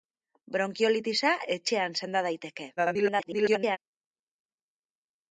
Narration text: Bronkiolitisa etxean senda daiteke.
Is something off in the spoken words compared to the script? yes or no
yes